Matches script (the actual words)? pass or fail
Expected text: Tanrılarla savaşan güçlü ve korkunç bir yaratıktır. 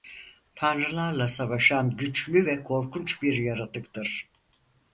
pass